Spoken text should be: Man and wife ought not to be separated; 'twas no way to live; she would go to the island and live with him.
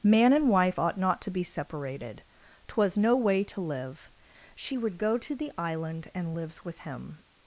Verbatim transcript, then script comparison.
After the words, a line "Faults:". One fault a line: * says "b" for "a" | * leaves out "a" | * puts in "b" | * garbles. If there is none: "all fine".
Man and wife ought not to be separated; 'twas no way to live; she would go to the island and lives with him.
Faults:
* says "lives" for "live"